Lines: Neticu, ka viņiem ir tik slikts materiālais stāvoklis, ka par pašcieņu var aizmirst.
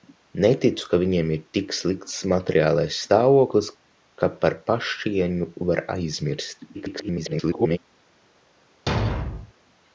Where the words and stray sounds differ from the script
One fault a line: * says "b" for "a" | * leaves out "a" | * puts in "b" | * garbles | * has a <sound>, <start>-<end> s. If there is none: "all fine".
* garbles
* has a thud, 8.9-9.5 s